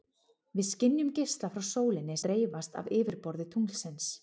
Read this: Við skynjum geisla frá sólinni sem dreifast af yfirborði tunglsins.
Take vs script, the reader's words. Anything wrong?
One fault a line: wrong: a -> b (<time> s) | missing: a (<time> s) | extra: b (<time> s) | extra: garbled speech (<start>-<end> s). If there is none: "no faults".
missing: sem (2.2 s)